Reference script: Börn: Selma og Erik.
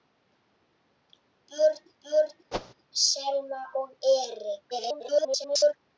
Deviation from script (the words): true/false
true